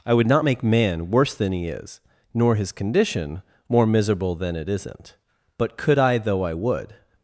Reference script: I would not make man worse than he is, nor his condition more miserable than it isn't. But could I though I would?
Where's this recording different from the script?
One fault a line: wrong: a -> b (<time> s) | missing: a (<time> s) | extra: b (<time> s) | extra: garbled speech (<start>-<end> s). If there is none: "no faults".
no faults